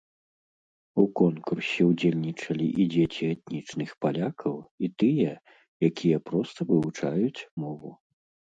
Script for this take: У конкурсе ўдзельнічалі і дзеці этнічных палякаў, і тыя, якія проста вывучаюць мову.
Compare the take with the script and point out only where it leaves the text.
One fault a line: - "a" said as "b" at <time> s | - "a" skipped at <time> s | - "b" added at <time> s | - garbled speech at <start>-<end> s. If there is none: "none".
none